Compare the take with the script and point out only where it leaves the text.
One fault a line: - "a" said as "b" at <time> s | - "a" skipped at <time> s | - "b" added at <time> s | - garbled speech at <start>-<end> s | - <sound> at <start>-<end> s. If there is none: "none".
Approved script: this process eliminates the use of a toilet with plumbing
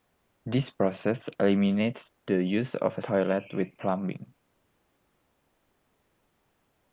none